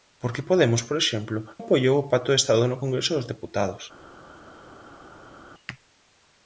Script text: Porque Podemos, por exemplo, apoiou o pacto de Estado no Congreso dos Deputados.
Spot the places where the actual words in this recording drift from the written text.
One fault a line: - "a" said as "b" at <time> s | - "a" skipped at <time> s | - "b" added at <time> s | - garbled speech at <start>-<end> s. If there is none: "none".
none